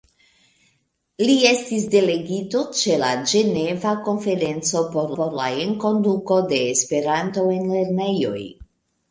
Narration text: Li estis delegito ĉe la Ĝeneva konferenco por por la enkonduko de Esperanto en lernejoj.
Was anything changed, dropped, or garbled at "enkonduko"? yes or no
no